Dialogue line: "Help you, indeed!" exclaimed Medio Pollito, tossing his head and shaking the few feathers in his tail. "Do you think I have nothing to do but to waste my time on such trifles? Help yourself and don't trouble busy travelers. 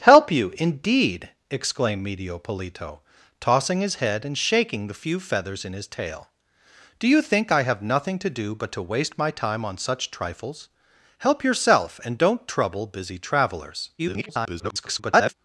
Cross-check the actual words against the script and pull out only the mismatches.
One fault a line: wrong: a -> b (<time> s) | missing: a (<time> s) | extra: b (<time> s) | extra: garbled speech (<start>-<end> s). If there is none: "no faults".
extra: garbled speech (14.0-15.3 s)